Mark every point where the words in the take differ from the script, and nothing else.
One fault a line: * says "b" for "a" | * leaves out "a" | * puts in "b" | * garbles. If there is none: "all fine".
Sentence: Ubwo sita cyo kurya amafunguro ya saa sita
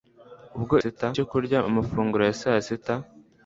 all fine